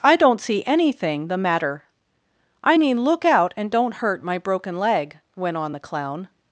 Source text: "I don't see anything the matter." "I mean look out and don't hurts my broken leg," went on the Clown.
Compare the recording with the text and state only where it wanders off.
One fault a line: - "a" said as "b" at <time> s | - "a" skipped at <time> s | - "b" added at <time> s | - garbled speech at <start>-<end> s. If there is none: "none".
- "hurts" said as "hurt" at 3.9 s